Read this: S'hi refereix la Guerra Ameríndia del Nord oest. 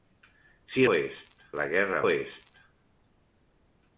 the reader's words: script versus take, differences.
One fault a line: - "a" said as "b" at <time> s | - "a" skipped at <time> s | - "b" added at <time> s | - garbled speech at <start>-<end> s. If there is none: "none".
- "refereix" said as "oest" at 0.9 s
- "Ameríndia del Nord" skipped at 2.0 s